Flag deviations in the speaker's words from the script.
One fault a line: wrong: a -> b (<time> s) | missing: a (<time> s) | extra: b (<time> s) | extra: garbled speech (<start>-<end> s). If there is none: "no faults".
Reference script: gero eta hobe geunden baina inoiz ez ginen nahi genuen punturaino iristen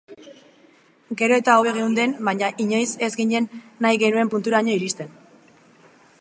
no faults